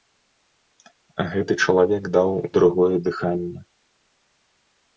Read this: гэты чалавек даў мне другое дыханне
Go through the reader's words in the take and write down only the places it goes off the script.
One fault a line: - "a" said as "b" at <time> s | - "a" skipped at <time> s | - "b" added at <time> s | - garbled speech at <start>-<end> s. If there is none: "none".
- "мне" skipped at 2.3 s